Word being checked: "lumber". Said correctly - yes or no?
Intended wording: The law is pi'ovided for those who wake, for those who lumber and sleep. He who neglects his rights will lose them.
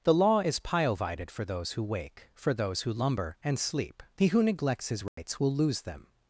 yes